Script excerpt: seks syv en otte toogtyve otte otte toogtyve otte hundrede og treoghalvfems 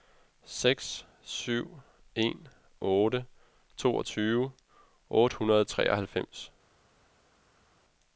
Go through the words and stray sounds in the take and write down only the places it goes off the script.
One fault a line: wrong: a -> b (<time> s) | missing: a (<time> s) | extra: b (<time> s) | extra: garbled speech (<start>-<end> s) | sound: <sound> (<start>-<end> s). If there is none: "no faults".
missing: otte toogtyve otte (5.4 s)